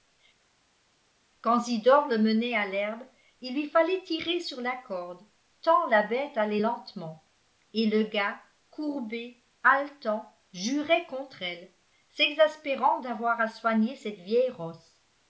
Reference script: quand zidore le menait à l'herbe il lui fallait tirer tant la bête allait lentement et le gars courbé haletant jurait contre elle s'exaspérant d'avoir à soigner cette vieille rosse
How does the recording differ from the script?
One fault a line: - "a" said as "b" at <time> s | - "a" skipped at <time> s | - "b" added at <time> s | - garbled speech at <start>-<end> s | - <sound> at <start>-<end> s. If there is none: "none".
- "sur la corde" added at 4.4 s